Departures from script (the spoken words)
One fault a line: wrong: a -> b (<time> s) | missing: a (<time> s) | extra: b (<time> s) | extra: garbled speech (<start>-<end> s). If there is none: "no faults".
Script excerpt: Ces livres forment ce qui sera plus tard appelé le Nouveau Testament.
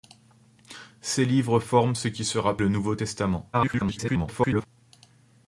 missing: plus tard appelé (2.6 s)
extra: garbled speech (3.5-4.7 s)